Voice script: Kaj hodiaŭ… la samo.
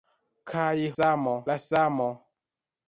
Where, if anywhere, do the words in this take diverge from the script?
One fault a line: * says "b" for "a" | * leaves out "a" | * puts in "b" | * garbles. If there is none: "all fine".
* says "samo" for "hodiaŭ"